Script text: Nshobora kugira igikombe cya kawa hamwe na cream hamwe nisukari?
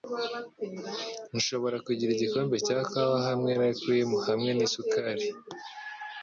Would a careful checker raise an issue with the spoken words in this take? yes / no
no